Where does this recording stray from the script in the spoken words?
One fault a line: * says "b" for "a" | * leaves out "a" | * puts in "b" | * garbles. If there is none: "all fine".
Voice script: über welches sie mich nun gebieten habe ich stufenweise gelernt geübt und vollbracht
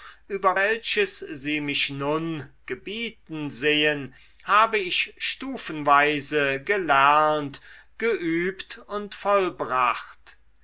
* puts in "sehen"